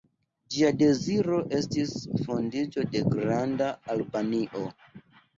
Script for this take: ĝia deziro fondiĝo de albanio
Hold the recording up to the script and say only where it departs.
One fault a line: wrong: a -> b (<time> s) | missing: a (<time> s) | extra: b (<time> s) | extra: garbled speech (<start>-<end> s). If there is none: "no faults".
extra: estis (1.6 s)
extra: granda (3.1 s)